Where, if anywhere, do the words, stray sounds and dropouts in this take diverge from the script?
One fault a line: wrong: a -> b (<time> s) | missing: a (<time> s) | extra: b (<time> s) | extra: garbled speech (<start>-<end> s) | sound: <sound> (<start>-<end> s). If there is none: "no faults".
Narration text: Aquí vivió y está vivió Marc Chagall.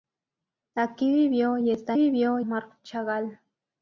no faults